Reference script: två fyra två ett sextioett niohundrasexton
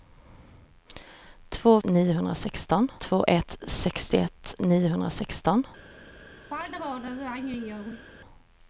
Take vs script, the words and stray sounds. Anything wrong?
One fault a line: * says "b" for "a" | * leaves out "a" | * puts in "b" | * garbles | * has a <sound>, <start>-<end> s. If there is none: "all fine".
* says "niohundrasexton" for "fyra"
* has a throat clearing, 6.5-8.0 s